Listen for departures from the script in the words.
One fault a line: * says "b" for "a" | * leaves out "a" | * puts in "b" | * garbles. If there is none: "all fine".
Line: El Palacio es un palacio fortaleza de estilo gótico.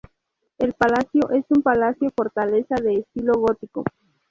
all fine